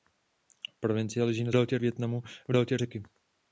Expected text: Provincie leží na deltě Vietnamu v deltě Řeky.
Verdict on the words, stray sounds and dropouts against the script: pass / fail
pass